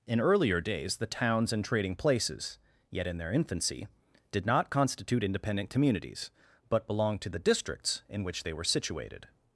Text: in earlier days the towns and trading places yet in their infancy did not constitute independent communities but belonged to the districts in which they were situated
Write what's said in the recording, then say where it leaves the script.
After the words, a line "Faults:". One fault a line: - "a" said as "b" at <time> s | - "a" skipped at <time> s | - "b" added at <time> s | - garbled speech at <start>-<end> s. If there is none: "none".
in earlier days the towns and trading places yet in their infancy did not constitute independent communities but belonged to the districts in which they were situated
Faults:
none